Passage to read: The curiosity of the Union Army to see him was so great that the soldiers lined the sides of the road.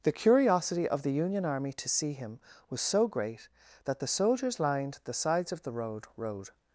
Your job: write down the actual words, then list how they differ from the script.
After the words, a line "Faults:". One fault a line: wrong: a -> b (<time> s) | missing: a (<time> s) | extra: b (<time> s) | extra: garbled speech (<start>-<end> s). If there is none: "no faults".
The curiosity of the Union Army to see him was so great that the soldiers lined the sides of the road road.
Faults:
extra: road (6.2 s)